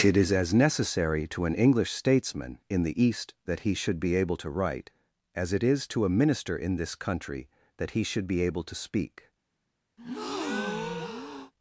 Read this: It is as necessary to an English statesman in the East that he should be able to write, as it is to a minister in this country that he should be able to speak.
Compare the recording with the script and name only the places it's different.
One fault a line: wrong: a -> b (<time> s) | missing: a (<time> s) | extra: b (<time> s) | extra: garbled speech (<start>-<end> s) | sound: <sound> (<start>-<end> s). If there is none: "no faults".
sound: breath (10.0-11.5 s)